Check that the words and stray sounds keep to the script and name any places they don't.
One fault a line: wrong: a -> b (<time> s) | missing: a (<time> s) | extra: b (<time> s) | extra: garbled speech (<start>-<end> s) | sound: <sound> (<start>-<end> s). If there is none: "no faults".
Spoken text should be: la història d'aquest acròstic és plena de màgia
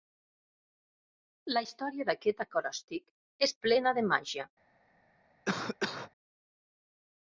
sound: cough (5.4-6.1 s)